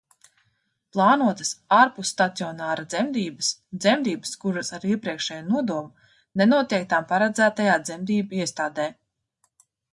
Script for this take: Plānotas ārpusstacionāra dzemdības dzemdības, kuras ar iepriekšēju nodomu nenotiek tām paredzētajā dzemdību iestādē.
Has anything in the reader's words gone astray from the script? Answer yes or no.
no